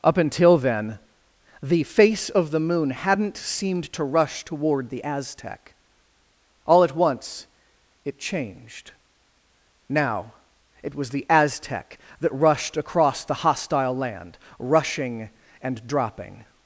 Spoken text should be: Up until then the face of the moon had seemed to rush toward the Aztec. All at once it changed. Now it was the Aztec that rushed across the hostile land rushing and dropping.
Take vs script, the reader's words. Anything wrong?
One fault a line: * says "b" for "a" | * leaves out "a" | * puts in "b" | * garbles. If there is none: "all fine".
* says "hadn't" for "had"